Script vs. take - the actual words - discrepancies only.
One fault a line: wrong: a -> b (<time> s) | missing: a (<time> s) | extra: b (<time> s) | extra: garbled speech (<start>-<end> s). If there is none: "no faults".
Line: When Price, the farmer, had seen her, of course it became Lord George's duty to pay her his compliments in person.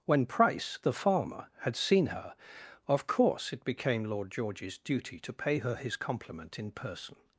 wrong: compliments -> compliment (5.9 s)